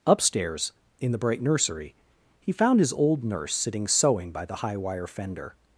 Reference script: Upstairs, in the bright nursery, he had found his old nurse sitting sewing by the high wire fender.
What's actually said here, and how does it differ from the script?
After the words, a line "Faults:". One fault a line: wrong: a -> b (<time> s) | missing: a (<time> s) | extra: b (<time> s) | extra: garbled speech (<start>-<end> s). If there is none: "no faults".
Upstairs, in the bright nursery, he found his old nurse sitting sewing by the high wire fender.
Faults:
missing: had (2.5 s)